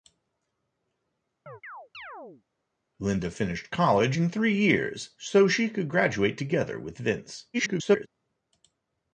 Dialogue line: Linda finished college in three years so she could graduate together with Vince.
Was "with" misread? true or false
false